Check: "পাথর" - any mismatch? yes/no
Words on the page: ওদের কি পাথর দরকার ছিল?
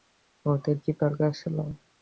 yes